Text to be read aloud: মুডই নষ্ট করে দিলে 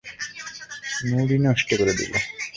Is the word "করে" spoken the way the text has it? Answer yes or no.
yes